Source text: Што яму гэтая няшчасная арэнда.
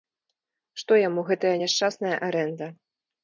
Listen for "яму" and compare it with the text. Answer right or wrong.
right